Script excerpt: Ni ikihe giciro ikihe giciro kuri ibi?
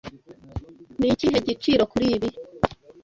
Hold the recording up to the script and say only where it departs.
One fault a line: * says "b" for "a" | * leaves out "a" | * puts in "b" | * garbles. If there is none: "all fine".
* leaves out "ikihe giciro"